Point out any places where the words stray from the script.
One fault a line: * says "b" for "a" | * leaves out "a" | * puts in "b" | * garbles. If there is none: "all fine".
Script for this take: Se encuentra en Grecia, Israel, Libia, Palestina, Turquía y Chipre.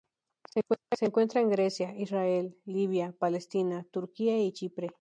all fine